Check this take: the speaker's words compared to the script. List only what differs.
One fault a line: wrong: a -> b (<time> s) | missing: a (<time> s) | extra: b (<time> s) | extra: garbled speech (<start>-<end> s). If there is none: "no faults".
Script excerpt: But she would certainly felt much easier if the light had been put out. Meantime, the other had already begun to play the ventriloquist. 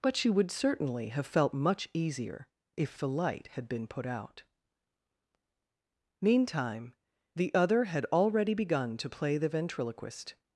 extra: have (1.1 s)